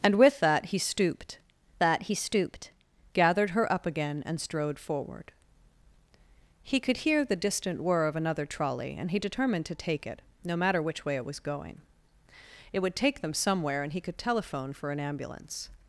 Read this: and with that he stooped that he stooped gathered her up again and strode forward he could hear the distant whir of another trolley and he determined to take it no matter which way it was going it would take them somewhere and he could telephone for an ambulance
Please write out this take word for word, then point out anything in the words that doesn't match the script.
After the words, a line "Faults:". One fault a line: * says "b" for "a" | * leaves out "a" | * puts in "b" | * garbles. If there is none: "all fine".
and with that he stooped that he stooped gathered her up again and strode forward he could hear the distant whir of another trolley and he determined to take it no matter which way it was going it would take them somewhere and he could telephone for an ambulance
Faults:
all fine